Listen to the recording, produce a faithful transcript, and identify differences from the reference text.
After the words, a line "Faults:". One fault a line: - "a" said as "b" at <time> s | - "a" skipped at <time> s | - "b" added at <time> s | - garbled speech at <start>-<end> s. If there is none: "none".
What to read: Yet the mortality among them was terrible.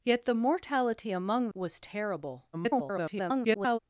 Yet the mortality among was terrible. [garbled]
Faults:
- "them" skipped at 1.5 s
- garbled speech at 2.5-3.8 s